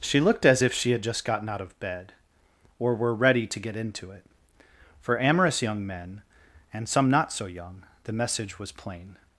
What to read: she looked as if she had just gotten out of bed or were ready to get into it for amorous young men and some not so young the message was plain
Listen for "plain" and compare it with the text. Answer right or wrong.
right